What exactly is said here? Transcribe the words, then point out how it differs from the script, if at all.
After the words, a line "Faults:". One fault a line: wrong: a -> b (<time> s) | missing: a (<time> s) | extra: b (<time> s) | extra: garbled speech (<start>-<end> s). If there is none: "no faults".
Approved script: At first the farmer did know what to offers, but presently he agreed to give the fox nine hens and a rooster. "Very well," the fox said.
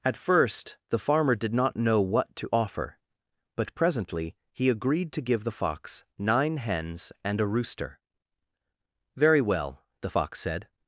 At first the farmer did not know what to offer, but presently he agreed to give the fox nine hens and a rooster. "Very well," the fox said.
Faults:
extra: not (1.5 s)
wrong: offers -> offer (2.5 s)